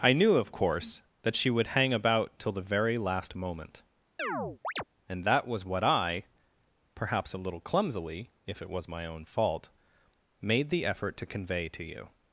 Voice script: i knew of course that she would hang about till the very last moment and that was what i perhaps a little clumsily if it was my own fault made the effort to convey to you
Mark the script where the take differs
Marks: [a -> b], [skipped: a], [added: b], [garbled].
i knew of course that she would hang about till the very last moment and that was what i perhaps a little clumsily if it was my own fault made the effort to convey to you